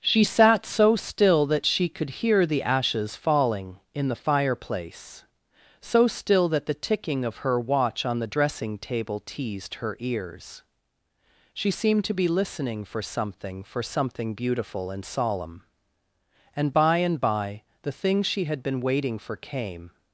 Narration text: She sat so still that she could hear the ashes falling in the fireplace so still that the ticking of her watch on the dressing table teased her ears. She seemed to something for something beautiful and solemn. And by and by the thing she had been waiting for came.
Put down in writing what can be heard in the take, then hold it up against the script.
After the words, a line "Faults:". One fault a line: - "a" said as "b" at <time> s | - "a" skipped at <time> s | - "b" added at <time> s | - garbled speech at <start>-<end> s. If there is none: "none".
She sat so still that she could hear the ashes falling in the fireplace so still that the ticking of her watch on the dressing table teased her ears. She seemed to be listening for something for something beautiful and solemn. And by and by the thing she had been waiting for came.
Faults:
- "be listening for" added at 12.1 s